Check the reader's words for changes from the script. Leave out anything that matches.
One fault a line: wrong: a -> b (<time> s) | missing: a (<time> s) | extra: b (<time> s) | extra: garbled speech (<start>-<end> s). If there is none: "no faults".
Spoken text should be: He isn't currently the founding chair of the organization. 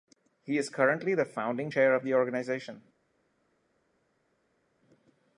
wrong: isn't -> is (0.6 s)